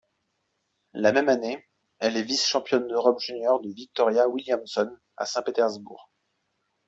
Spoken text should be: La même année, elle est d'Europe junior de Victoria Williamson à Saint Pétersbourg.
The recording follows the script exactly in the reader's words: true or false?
false